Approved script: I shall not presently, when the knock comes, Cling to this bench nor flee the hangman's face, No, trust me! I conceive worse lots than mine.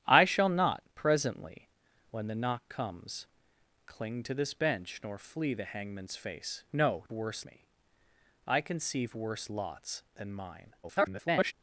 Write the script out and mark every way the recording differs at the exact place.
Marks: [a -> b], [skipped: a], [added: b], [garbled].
I shall not presently, when the knock comes, Cling to this bench nor flee the hangman's face, No, [trust -> worse] me! I conceive worse lots than mine. [garbled]